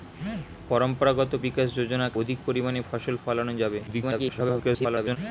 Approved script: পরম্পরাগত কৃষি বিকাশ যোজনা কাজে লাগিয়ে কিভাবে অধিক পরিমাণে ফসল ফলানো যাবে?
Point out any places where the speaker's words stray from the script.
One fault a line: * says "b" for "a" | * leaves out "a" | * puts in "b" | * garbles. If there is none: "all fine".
* leaves out "কৃষি"
* leaves out "কাজে লাগিয়ে কিভাবে"
* garbles